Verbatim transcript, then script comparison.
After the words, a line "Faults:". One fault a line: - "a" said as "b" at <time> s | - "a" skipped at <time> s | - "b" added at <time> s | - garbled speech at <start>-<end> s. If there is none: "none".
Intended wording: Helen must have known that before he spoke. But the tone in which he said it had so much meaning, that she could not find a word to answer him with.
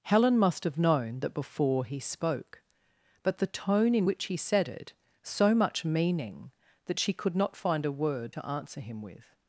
Helen must have known that before he spoke. But the tone in which he said it so much meaning, that she could not find a word to answer him with.
Faults:
- "had" skipped at 4.9 s